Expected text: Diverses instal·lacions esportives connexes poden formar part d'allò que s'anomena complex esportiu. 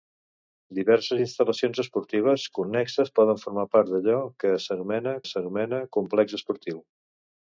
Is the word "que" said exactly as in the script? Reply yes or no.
yes